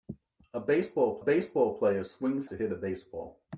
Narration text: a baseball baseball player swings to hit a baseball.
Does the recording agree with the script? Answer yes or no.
yes